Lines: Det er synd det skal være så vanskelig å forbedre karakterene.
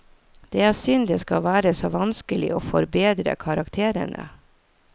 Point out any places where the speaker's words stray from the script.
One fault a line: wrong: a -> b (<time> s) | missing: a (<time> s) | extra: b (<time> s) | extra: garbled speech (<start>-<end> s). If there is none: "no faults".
no faults